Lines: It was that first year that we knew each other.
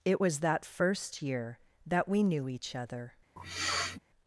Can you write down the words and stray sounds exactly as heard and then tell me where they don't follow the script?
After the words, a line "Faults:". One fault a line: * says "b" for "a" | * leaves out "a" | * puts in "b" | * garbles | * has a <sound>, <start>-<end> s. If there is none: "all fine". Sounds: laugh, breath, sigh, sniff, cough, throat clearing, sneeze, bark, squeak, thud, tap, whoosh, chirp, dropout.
It was that first year that we knew each other.
Faults:
* has a sniff, 3.4-4.0 s